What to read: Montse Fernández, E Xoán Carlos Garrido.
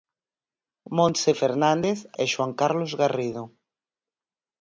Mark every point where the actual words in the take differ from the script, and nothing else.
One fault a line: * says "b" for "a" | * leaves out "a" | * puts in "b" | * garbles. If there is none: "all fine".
all fine